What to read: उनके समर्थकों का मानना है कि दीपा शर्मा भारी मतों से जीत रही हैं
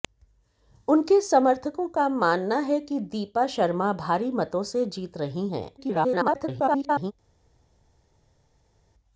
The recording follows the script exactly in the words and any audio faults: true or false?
false